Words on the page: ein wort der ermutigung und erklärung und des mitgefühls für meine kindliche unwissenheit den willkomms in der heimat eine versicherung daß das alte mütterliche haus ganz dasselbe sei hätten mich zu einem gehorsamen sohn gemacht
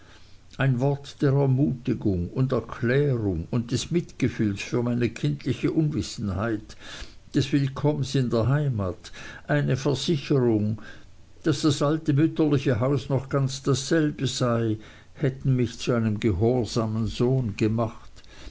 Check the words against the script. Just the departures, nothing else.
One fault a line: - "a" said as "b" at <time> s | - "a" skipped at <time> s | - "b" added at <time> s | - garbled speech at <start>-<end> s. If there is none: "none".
- "den" said as "des" at 7.3 s
- "noch" added at 13.1 s